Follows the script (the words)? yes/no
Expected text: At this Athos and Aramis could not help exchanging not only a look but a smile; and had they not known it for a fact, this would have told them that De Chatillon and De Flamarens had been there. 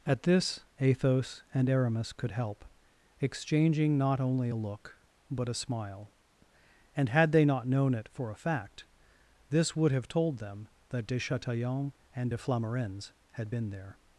no